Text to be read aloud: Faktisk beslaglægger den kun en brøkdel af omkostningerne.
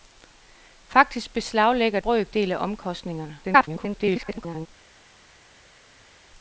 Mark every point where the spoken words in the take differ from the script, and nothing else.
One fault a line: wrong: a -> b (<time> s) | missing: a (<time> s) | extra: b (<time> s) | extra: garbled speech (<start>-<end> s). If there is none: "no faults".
missing: den kun en (2.0 s)
extra: garbled speech (3.4-4.7 s)